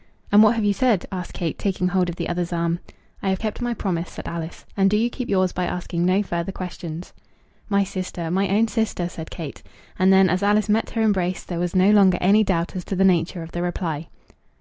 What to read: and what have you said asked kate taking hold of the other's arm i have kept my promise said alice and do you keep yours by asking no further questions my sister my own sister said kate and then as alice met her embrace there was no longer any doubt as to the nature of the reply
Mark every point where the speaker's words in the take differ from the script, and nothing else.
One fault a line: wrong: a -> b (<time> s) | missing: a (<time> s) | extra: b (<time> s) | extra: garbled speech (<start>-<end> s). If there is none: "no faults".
no faults